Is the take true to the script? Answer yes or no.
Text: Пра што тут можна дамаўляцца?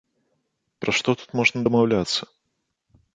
yes